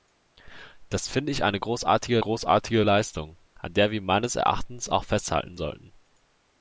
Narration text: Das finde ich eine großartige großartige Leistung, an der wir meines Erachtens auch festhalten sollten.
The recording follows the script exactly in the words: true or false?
true